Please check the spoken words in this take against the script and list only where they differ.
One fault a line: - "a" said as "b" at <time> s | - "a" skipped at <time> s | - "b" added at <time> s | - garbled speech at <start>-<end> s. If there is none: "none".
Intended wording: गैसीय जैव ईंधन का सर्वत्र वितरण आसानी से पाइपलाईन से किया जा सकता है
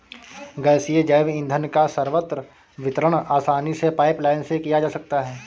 none